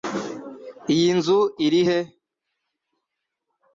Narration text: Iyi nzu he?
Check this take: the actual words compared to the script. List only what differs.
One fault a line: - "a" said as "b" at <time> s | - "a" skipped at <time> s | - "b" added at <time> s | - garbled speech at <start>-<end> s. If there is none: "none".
- "iri" added at 1.6 s